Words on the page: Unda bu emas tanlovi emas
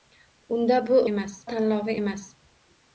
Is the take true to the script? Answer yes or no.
yes